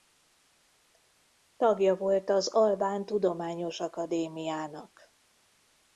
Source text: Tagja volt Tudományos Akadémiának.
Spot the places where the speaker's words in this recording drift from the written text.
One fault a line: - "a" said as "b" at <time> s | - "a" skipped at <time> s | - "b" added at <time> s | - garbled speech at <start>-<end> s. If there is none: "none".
- "az Albán" added at 2.3 s